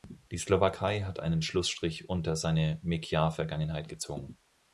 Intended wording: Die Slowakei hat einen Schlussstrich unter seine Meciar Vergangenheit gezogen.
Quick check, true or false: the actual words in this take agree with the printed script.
true